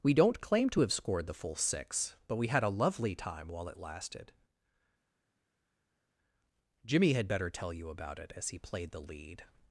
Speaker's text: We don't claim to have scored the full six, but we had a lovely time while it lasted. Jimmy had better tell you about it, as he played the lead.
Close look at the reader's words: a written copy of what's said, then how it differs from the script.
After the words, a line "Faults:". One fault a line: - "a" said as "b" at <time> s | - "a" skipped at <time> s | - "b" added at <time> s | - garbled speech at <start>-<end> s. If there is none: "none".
We don't claim to have scored the full six, but we had a lovely time while it lasted. Jimmy had better tell you about it, as he played the lead.
Faults:
none